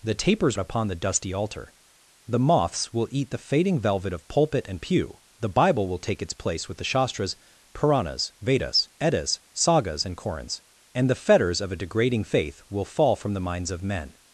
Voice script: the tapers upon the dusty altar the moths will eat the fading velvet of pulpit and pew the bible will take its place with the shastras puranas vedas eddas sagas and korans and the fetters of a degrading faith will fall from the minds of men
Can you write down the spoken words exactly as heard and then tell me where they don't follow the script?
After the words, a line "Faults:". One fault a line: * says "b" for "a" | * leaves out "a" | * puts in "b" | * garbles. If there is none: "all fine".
the tapers upon the dusty altar the moths will eat the fading velvet of pulpit and pew the bible will take its place with the shastras puranas vedas eddas sagas and korans and the fetters of a degrading faith will fall from the minds of men
Faults:
all fine